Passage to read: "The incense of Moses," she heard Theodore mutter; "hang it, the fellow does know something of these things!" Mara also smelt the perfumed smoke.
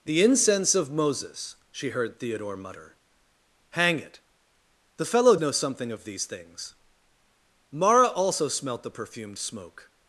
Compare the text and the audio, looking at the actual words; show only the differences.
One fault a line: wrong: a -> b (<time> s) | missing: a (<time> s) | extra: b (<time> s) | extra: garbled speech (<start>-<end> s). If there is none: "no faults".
missing: does (5.3 s)